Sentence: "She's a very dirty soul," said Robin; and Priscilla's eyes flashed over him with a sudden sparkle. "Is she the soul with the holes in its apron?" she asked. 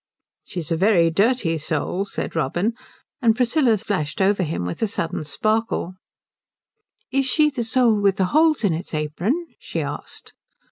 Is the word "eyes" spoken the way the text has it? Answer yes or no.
no